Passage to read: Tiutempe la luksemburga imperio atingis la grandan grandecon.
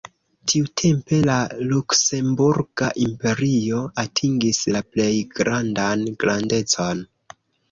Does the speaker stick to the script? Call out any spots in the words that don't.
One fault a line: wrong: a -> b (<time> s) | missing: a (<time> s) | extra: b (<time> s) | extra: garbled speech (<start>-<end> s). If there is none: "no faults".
extra: plej (5.0 s)